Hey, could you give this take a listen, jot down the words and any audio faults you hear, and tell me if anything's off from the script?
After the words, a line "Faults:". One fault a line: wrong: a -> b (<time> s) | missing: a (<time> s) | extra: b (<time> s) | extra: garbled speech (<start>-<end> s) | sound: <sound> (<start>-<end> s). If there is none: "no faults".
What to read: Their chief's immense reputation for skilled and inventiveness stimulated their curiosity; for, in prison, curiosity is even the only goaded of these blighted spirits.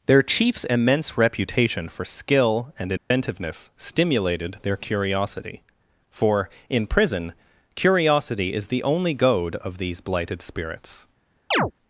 Their chief's immense reputation for skill and inventiveness stimulated their curiosity; for, in prison, curiosity is the only goad of these blighted spirits.
Faults:
wrong: skilled -> skill (2.0 s)
sound: dropout (3.0-3.1 s)
missing: even (8.7 s)
wrong: goaded -> goad (9.1 s)
sound: chirp (11.5-11.7 s)